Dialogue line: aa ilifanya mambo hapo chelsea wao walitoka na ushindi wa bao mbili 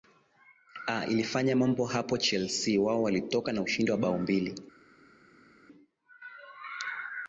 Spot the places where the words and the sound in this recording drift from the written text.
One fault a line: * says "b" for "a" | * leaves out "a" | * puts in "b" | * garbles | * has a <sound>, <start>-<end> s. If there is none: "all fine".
all fine